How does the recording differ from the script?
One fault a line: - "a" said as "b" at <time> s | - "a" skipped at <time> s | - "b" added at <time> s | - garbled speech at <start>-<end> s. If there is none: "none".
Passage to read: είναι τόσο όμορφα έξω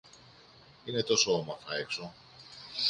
none